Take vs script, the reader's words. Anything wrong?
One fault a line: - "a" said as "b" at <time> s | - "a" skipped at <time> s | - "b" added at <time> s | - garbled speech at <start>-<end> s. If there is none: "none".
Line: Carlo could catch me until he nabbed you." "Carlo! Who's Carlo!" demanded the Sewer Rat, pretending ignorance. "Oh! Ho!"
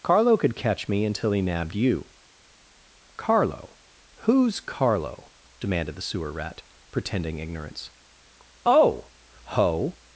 none